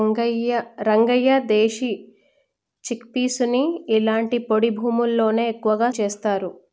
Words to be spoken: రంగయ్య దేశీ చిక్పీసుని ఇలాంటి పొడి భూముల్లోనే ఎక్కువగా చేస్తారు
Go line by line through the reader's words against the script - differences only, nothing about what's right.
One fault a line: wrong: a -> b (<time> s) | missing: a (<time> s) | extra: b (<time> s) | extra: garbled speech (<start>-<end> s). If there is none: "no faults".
no faults